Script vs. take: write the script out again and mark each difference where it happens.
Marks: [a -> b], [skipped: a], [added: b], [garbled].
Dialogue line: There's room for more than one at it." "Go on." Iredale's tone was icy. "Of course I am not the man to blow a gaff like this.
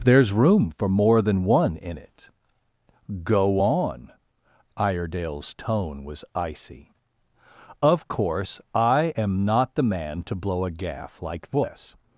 There's room for more than one [at -> in] it." "Go on." Iredale's tone was icy. "Of course I am not the man to blow a gaff like this.